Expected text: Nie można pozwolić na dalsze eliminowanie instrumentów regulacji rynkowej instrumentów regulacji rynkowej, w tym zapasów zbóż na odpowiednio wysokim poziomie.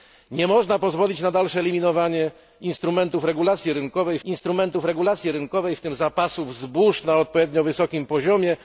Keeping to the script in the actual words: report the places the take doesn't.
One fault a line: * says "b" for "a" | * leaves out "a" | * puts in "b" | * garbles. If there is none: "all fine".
all fine